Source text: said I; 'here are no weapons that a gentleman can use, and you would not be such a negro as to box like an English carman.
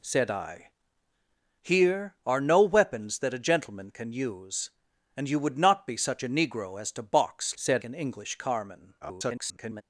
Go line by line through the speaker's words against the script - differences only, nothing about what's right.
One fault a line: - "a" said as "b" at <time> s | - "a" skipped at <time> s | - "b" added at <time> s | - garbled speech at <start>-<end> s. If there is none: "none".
- "like" said as "said" at 7.5 s
- garbled speech at 9.0-9.8 s